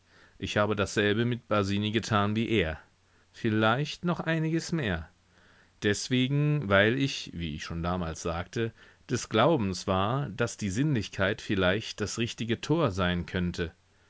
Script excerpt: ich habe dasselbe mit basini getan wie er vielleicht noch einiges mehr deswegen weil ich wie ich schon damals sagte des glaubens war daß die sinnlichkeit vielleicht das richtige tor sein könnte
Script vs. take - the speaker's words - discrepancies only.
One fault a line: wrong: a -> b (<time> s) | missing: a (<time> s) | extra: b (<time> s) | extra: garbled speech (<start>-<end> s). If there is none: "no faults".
no faults